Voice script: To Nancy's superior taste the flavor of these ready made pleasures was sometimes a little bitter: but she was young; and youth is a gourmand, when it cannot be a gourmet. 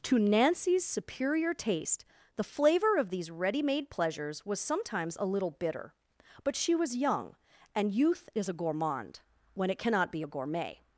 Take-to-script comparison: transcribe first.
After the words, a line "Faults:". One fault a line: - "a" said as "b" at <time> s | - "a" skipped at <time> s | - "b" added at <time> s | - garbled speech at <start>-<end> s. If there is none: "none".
To Nancy's superior taste the flavor of these ready made pleasures was sometimes a little bitter: but she was young; and youth is a gourmand, when it cannot be a gourmet.
Faults:
none